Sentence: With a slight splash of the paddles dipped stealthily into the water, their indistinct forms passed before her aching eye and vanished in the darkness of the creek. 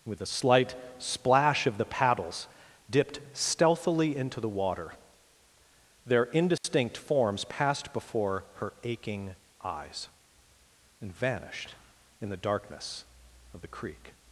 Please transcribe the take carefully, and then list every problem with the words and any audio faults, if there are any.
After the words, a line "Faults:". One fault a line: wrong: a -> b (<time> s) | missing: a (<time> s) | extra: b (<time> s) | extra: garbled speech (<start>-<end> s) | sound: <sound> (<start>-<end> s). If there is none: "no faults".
With a slight splash of the paddles dipped stealthily into the water, their indistinct forms passed before her aching eyes and vanished in the darkness of the creek.
Faults:
sound: dropout (6.6-6.6 s)
wrong: eye -> eyes (9.6 s)